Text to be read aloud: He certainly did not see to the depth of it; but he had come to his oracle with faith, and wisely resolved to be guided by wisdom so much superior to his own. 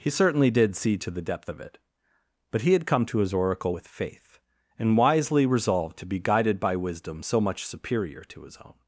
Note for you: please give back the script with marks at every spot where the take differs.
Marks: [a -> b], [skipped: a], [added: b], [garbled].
He certainly did [skipped: not] see to the depth of it; but he had come to his oracle with faith, and wisely resolved to be guided by wisdom so much superior to his own.